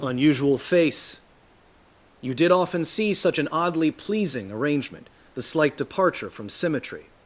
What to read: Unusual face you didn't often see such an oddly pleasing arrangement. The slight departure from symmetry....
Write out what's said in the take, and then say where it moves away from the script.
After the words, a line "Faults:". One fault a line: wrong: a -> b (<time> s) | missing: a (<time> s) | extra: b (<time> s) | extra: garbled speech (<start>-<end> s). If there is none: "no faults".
Unusual face you did often see such an oddly pleasing arrangement. The slight departure from symmetry....
Faults:
wrong: didn't -> did (2.4 s)